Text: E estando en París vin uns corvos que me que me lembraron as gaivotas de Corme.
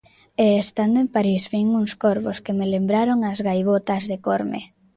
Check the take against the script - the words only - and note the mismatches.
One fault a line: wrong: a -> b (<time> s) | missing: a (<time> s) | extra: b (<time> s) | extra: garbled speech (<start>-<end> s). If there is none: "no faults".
missing: que me (2.7 s)